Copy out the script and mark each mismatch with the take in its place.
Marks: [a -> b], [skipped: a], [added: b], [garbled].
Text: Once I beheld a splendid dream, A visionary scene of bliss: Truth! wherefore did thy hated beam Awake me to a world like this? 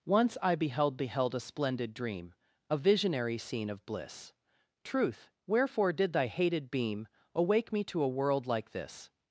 Once I beheld [added: beheld] a splendid dream, A visionary scene of bliss: Truth! wherefore did thy hated beam Awake me to a world like this?